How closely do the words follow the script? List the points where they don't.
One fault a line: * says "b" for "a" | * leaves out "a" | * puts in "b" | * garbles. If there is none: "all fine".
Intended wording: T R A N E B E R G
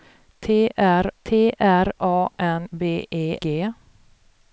* puts in "t R"
* leaves out "E"
* leaves out "R"